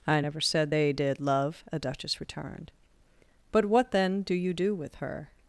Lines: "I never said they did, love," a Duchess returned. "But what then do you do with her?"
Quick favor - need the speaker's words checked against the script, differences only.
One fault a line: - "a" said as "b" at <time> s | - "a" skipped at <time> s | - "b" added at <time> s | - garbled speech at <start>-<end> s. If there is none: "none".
none